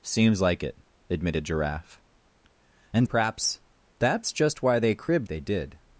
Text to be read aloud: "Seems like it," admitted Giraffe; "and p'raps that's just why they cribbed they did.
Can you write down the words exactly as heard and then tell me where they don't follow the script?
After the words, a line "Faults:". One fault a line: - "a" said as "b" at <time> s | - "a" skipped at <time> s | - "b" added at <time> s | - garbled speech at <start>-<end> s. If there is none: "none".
"Seems like it," admitted Giraffe; "and p'raps that's just why they cribbed they did.
Faults:
none